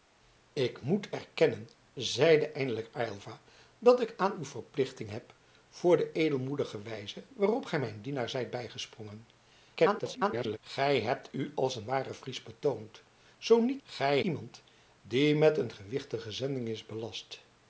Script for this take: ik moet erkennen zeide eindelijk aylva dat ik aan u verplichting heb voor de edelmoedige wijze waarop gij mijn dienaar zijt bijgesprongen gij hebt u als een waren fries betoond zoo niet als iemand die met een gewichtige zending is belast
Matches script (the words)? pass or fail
fail